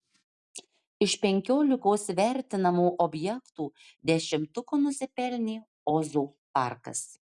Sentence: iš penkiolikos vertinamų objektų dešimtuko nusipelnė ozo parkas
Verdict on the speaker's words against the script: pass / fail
pass